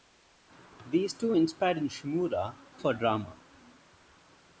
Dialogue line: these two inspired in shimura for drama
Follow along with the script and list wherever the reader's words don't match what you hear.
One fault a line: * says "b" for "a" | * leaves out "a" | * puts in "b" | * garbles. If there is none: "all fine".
all fine